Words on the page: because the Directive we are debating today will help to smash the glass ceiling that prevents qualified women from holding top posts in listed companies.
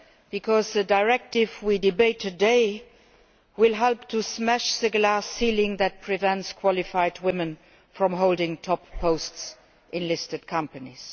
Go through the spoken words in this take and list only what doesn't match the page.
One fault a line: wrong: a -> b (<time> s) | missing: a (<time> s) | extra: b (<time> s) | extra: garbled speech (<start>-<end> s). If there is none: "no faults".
no faults